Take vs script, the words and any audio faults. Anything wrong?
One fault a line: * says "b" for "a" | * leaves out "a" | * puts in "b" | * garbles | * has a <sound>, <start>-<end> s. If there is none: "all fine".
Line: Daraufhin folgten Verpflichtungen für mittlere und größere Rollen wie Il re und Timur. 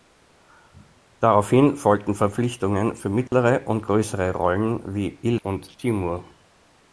* has a dropout, 3.3-3.3 s
* leaves out "re"